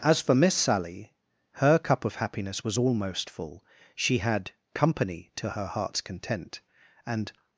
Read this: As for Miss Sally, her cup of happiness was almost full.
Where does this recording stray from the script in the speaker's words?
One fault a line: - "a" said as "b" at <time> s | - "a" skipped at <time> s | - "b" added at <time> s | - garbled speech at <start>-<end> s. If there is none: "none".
- "She had company to her heart's content and" added at 3.9 s